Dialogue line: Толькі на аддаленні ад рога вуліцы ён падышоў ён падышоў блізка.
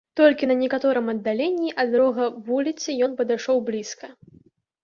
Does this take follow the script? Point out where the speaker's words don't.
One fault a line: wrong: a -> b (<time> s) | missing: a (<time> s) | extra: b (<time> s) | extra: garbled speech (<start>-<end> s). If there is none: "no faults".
extra: некаторым (0.6 s)
missing: ён падышоў (3.6 s)